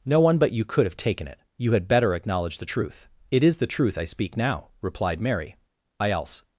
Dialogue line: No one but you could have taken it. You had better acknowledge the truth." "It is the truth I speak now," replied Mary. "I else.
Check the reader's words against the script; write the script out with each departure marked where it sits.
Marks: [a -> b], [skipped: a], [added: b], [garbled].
No one but you could have taken it. You had better acknowledge the truth." "It is the truth I speak now," replied Mary. "I else.